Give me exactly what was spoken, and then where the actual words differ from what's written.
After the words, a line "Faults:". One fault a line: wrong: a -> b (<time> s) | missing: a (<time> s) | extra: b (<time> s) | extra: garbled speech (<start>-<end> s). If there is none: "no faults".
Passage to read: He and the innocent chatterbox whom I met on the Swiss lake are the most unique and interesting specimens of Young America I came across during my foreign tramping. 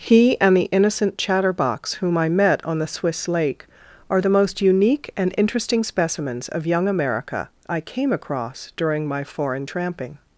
He and the innocent chatterbox whom I met on the Swiss lake are the most unique and interesting specimens of Young America I came across during my foreign tramping.
Faults:
no faults